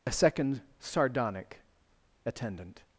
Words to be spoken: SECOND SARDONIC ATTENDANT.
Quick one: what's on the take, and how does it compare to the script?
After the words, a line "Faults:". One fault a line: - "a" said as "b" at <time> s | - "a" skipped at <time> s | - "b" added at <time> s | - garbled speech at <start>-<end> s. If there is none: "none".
a SECOND SARDONIC ATTENDANT.
Faults:
- "a" added at 0.1 s